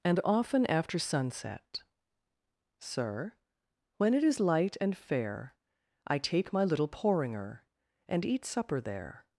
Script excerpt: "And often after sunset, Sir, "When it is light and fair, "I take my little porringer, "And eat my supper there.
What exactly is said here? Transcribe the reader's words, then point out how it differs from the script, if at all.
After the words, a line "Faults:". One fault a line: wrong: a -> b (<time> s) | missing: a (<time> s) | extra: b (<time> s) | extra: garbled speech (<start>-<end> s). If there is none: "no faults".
"And often after sunset, Sir, "When it is light and fair, "I take my little porringer, "And eat supper there.
Faults:
missing: my (8.4 s)